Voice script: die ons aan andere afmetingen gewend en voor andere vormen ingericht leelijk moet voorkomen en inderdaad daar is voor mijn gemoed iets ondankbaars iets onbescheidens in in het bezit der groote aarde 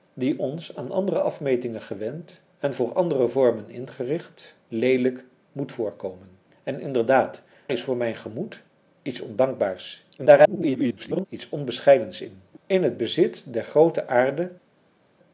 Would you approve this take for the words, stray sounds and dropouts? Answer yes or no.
no